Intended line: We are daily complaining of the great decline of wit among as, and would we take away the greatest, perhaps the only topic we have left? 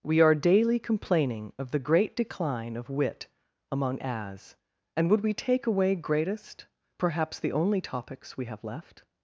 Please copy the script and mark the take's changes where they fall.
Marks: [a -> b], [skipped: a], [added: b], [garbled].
We are daily complaining of the great decline of wit among as, and would we take away [skipped: the] greatest, perhaps the only [topic -> topics] we have left?